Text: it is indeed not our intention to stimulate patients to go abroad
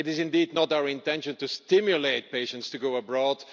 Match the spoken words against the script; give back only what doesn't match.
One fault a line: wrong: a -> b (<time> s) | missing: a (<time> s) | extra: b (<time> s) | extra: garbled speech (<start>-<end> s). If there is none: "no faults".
no faults